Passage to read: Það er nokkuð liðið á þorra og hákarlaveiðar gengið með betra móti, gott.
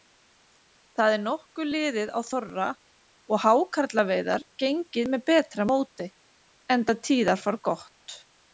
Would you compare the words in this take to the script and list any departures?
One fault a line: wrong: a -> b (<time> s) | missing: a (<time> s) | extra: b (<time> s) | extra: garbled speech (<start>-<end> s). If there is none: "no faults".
extra: enda tíðarfar (6.8 s)